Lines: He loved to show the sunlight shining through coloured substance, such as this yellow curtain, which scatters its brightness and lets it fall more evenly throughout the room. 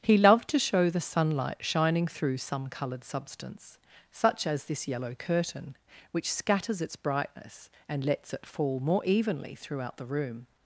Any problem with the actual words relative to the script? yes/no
yes